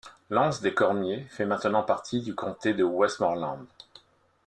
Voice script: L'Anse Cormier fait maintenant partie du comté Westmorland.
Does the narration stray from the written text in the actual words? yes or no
yes